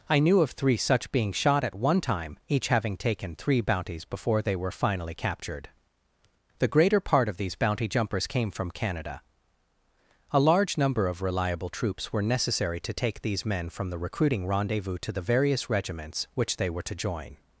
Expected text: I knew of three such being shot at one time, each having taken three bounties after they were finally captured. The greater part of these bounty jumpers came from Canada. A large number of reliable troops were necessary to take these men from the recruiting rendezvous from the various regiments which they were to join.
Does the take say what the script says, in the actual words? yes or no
no